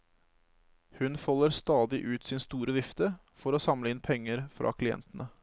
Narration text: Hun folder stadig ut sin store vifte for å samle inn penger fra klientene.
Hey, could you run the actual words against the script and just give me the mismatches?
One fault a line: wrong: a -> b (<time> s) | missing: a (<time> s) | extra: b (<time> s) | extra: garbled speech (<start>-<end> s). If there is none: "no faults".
no faults